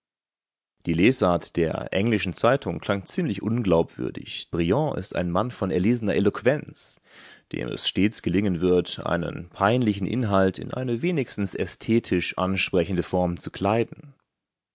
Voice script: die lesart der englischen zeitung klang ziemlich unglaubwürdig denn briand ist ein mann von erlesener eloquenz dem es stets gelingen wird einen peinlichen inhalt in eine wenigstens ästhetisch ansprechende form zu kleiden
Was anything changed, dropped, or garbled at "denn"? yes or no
yes